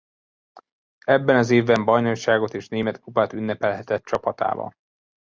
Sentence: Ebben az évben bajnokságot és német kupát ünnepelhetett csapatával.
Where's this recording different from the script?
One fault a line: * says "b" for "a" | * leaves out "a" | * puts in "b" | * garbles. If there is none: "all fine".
all fine